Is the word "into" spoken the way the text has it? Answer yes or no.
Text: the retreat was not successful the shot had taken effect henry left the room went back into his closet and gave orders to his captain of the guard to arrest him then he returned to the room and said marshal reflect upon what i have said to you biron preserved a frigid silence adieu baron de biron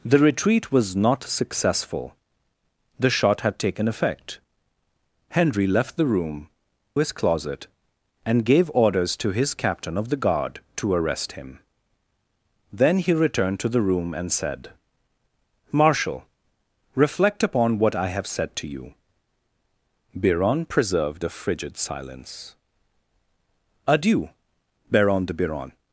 no